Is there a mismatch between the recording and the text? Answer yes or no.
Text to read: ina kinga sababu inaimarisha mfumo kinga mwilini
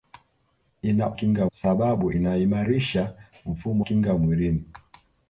no